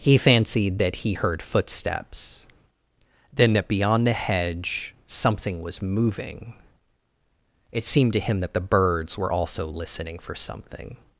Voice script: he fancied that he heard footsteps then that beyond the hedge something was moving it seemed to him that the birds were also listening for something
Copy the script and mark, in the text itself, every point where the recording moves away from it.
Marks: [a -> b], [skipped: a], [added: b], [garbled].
he fancied that he heard footsteps then that beyond the hedge something was moving it seemed to him that the birds were also listening for something